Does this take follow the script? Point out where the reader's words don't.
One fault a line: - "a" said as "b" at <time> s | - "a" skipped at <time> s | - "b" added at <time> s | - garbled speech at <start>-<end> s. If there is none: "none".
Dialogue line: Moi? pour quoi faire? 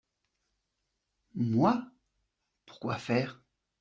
none